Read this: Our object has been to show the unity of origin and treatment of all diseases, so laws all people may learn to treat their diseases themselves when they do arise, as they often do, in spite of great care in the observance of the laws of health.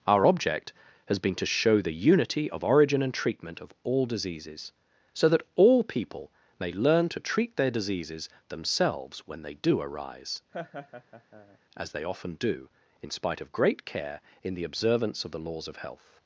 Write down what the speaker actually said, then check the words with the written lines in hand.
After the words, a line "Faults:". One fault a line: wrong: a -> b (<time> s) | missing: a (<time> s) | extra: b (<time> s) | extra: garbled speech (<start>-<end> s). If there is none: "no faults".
Our object has been to show the unity of origin and treatment of all diseases, so that all people may learn to treat their diseases themselves when they do arise, as they often do, in spite of great care in the observance of the laws of health.
Faults:
wrong: laws -> that (5.3 s)